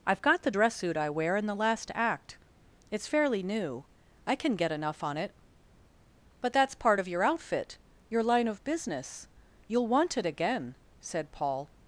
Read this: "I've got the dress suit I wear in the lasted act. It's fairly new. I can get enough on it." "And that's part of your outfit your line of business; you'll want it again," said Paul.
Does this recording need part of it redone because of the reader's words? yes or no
yes